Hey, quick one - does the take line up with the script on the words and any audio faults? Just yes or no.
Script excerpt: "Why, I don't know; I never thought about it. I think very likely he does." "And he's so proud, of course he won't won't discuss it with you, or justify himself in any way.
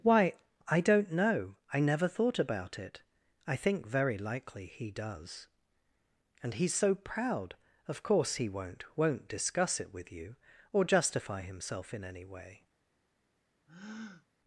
no